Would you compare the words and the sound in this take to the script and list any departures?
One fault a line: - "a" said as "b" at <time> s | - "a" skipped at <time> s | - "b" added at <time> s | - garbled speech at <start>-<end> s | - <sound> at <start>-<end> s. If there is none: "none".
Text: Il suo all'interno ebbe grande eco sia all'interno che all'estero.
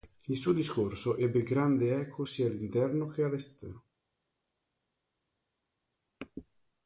- "all'interno" said as "discorso" at 0.5 s